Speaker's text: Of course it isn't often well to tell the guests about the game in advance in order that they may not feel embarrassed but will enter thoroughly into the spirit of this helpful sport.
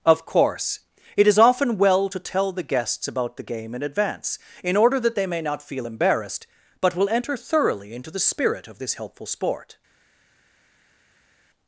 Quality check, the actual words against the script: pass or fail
fail